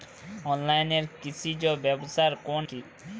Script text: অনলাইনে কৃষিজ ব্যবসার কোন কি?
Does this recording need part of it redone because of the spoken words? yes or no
no